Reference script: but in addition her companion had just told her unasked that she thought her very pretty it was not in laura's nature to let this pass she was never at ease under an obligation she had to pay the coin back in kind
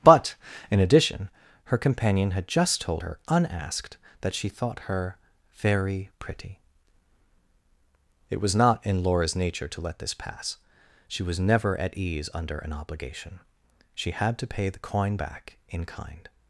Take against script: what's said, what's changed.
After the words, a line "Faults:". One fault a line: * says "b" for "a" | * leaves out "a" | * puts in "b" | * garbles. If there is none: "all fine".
but in addition her companion had just told her unasked that she thought her very pretty it was not in laura's nature to let this pass she was never at ease under an obligation she had to pay the coin back in kind
Faults:
all fine